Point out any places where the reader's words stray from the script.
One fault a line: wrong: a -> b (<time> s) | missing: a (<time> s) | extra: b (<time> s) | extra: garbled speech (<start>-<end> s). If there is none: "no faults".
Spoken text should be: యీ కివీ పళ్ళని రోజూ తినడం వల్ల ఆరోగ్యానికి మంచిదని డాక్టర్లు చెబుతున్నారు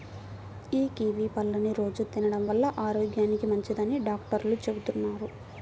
no faults